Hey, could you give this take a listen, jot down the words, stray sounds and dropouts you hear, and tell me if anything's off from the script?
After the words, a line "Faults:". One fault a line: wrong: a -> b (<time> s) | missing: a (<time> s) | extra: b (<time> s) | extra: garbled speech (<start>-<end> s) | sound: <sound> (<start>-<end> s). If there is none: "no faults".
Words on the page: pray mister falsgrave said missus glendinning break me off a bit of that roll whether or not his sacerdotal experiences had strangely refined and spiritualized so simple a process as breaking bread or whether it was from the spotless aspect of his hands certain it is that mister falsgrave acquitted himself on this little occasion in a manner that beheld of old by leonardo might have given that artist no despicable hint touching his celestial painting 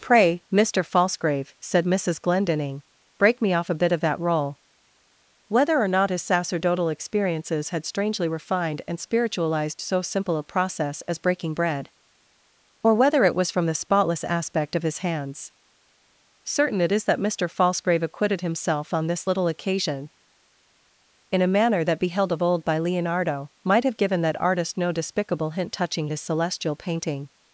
pray mister falsgrave said missus glendinning break me off a bit of that roll whether or not his sacerdotal experiences had strangely refined and spiritualized so simple a process as breaking bread or whether it was from the spotless aspect of his hands certain it is that mister falsgrave acquitted himself on this little occasion in a manner that beheld of old by leonardo might have given that artist no despicable hint touching his celestial painting
Faults:
no faults